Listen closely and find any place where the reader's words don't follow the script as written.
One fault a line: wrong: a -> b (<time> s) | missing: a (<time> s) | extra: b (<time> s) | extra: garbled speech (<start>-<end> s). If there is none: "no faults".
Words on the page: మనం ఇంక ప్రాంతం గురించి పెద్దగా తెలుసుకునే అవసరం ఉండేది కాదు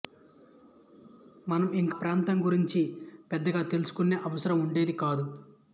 no faults